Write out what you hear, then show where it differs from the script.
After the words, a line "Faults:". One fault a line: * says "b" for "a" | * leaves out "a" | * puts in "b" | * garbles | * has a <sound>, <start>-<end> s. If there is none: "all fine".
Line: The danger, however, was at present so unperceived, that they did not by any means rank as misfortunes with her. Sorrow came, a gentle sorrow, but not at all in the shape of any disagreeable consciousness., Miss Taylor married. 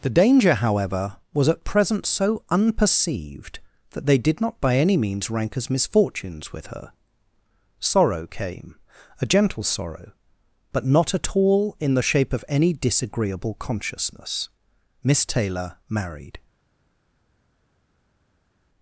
The danger, however, was at present so unperceived, that they did not by any means rank as misfortunes with her. Sorrow came, a gentle sorrow, but not at all in the shape of any disagreeable consciousness., Miss Taylor married.
Faults:
all fine